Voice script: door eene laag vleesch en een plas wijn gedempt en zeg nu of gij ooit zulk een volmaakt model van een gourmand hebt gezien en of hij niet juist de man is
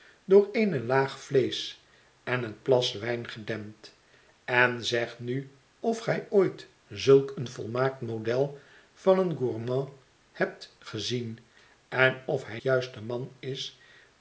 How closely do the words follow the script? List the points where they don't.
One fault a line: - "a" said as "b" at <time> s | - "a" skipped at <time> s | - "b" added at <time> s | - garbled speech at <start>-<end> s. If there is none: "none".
- "niet" skipped at 12.6 s